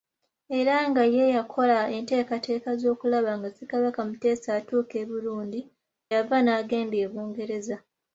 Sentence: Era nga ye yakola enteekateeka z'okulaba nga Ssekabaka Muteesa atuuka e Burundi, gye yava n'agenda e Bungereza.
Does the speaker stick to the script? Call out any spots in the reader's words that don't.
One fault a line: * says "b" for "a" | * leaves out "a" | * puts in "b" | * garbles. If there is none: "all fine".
* leaves out "gye"